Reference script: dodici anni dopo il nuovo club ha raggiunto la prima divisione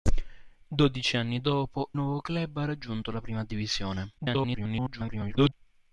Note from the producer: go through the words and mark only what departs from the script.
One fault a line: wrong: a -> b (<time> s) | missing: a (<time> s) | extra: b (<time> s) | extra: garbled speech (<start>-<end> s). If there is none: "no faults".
missing: il (1.9 s)
extra: garbled speech (4.2-5.5 s)